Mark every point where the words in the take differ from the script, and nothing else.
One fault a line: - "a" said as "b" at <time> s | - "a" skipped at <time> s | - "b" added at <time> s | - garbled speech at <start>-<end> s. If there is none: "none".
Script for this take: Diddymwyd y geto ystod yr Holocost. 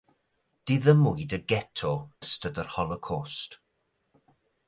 none